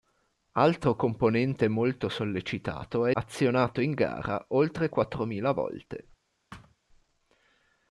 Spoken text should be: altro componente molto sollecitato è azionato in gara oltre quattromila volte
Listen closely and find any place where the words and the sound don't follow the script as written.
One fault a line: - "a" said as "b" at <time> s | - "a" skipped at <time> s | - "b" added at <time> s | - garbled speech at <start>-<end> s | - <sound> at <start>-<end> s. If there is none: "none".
- thud at 6.5-6.8 s